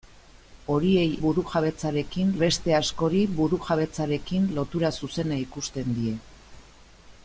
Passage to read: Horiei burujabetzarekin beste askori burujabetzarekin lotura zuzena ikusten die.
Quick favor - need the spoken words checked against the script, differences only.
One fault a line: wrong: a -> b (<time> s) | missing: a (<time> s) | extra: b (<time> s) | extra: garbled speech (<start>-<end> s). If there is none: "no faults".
no faults